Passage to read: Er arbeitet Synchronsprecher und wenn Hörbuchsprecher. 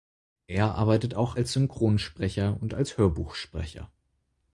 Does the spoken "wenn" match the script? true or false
false